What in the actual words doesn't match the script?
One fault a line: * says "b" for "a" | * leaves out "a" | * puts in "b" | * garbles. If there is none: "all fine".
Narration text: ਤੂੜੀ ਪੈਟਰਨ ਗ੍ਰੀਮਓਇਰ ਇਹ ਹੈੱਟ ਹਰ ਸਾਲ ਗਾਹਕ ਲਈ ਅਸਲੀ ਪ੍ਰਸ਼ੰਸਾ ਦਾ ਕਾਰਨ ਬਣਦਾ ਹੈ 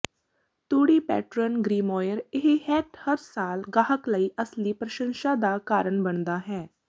all fine